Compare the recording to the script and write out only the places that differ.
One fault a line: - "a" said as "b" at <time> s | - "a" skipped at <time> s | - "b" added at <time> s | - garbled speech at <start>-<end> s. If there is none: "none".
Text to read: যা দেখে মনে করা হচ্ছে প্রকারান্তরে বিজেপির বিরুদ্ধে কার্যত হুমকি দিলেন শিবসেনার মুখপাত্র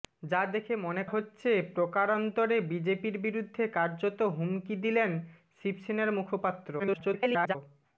- "করা" skipped at 1.0 s
- garbled speech at 6.8-7.6 s